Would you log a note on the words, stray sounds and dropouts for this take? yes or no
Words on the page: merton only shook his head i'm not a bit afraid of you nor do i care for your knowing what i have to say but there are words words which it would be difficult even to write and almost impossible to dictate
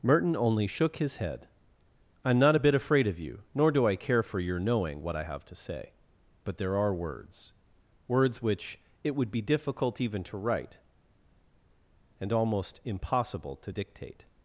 no